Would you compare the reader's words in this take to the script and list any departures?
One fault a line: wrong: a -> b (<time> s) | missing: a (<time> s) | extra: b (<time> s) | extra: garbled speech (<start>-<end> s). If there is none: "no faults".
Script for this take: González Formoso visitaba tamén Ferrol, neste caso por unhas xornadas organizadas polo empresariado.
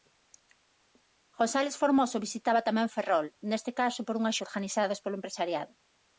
missing: xornadas (4.4 s)